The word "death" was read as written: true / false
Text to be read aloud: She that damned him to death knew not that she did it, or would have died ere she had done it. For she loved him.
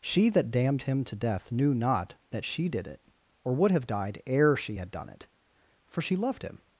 true